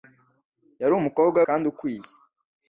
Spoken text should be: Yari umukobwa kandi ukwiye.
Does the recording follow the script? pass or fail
pass